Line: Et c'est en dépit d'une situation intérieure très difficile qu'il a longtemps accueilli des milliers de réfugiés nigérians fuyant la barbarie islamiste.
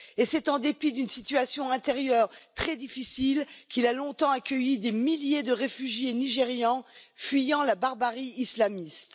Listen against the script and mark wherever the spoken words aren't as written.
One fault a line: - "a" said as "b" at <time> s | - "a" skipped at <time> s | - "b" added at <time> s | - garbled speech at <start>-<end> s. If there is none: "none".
none